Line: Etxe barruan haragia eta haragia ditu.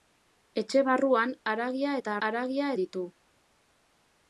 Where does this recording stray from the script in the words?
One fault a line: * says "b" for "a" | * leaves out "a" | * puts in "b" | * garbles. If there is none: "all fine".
all fine